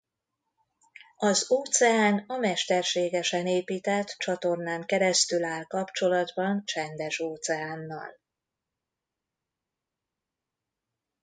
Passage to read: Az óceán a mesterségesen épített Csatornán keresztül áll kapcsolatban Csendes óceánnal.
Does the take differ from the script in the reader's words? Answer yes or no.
no